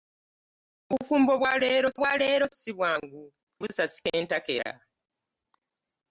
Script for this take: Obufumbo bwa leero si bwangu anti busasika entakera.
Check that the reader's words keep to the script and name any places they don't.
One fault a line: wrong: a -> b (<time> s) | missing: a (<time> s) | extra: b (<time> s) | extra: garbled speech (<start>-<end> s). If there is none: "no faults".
extra: bwa leero (2.0 s)
missing: anti (3.2 s)